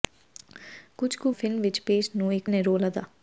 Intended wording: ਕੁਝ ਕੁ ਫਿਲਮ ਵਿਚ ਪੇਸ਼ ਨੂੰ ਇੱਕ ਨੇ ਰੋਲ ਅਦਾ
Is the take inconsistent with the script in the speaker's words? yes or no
no